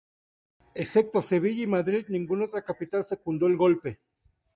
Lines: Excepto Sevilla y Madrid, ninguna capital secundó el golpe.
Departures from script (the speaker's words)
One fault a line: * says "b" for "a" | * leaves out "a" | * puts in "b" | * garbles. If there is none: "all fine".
* puts in "otra"